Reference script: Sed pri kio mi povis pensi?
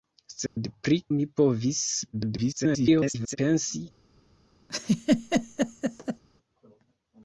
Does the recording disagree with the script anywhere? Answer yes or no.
yes